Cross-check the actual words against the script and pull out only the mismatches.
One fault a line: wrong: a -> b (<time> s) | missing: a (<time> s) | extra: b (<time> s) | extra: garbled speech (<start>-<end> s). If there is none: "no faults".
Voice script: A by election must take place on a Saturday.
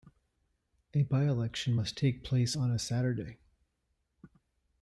no faults